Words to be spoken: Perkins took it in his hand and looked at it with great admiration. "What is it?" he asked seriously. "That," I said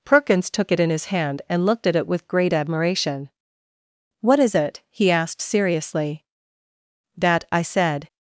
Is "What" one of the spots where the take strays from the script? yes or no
no